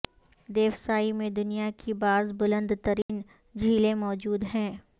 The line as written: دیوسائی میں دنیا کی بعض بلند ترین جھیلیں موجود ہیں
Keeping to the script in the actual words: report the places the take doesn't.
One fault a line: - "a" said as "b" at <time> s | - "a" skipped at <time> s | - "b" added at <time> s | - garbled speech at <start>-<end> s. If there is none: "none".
none